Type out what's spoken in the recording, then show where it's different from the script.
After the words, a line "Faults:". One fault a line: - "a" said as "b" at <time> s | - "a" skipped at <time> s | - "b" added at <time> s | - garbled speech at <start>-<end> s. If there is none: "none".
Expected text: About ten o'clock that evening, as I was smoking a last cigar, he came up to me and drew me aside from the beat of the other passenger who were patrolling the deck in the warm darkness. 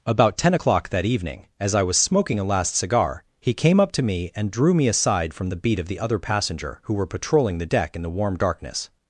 About ten o'clock that evening, as I was smoking a last cigar, he came up to me and drew me aside from the beat of the other passenger who were patrolling the deck in the warm darkness.
Faults:
none